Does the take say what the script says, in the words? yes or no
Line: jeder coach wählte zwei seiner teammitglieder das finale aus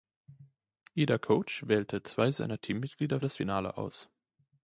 yes